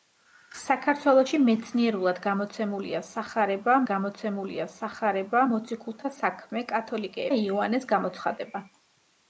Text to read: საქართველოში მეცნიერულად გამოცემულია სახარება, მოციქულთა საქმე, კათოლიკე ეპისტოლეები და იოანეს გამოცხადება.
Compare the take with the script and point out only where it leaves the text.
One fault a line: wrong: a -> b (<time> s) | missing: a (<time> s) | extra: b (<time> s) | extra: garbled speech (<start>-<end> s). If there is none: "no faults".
extra: გამოცემულია სახარება (3.9 s)
missing: ეპისტოლეები (7.3 s)